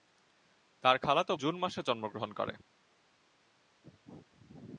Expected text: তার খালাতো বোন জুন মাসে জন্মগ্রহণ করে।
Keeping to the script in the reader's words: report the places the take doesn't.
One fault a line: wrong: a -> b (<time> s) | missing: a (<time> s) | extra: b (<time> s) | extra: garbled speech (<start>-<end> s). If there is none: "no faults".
missing: বোন (1.3 s)